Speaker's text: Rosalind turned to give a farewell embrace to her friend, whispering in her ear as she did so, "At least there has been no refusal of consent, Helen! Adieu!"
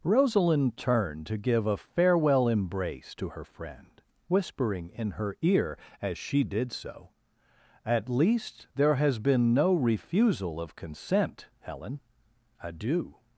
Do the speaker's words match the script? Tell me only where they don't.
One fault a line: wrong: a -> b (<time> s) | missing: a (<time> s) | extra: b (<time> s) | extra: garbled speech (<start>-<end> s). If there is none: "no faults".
no faults